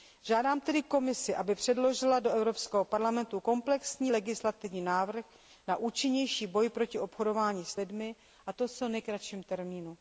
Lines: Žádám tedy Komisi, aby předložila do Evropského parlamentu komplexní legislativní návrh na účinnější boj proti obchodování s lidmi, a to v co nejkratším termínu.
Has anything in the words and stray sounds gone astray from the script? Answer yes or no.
no